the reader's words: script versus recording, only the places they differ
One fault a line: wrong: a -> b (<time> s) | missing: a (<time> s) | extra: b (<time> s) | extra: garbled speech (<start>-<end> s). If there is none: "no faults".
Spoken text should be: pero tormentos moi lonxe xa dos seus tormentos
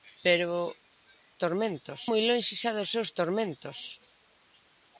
no faults